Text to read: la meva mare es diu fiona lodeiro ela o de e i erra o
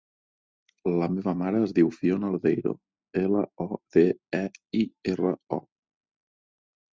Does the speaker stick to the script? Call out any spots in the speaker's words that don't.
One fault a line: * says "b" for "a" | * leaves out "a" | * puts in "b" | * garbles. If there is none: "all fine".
all fine